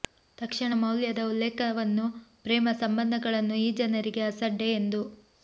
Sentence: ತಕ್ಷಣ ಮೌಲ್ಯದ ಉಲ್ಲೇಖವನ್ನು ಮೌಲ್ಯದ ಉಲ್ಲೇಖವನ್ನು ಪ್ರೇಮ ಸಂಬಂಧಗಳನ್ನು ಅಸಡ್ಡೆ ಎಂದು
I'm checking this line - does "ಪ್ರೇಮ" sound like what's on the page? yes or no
no